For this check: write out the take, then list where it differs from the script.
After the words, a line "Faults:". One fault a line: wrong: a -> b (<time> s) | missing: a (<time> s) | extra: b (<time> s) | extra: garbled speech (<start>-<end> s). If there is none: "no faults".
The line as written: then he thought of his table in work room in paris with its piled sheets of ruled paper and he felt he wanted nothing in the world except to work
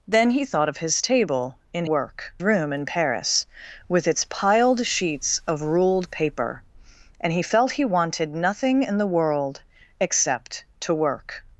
then he thought of his table in work room in paris with its piled sheets of ruled paper and he felt he wanted nothing in the world except to work
Faults:
no faults